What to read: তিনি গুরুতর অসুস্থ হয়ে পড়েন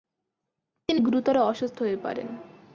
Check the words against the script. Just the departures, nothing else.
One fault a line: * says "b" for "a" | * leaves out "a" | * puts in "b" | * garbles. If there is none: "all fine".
all fine